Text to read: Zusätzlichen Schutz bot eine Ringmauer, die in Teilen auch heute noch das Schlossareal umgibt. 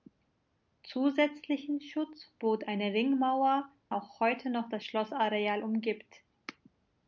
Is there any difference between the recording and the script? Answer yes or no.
yes